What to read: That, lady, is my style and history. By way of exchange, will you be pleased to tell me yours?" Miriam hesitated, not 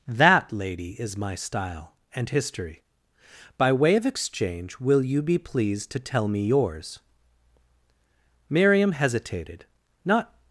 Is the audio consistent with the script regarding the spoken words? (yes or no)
yes